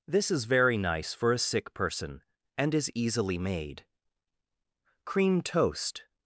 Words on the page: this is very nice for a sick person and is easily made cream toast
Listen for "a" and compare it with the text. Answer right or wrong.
right